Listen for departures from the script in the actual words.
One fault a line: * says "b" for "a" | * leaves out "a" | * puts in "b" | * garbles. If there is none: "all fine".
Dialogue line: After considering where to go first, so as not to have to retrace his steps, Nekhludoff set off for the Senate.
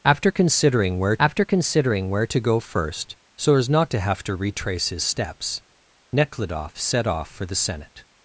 * puts in "after considering where"